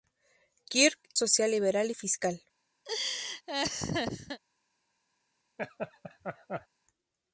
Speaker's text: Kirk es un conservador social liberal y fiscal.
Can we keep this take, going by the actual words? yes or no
no